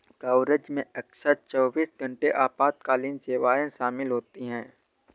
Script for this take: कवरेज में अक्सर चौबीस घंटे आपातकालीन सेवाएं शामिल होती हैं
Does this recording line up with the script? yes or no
yes